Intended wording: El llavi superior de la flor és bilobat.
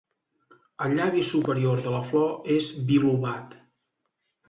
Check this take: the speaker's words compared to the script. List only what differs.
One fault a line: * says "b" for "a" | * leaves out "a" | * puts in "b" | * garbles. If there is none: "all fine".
all fine